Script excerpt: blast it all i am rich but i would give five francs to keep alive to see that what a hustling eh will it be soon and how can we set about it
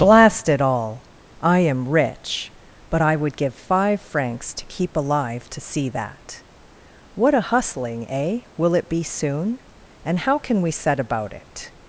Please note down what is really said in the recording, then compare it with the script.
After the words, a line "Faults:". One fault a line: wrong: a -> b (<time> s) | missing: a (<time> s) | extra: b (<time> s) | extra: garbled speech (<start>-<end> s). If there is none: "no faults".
blast it all i am rich but i would give five francs to keep alive to see that what a hustling eh will it be soon and how can we set about it
Faults:
no faults